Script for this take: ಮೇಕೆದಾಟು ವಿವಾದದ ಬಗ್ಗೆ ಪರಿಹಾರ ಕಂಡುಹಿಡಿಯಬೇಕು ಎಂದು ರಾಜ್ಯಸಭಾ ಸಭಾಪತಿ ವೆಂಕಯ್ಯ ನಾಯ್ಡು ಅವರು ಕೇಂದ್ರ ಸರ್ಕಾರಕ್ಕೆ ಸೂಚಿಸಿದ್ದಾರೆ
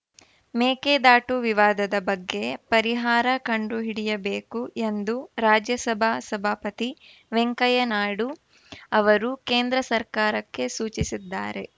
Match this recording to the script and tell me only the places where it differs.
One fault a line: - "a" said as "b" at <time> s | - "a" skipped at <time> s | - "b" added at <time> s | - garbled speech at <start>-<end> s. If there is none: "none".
none